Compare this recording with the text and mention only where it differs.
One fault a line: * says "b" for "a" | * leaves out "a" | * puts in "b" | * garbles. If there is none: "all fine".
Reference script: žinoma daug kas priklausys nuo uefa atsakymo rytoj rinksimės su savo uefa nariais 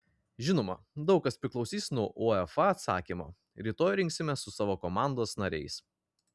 * says "komandos" for "uefa"